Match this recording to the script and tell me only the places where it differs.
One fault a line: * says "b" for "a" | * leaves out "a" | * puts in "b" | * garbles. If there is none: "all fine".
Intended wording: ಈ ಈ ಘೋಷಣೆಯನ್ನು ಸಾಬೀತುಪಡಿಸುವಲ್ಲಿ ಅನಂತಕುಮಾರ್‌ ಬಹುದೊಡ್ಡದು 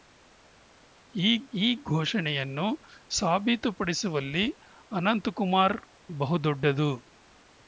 all fine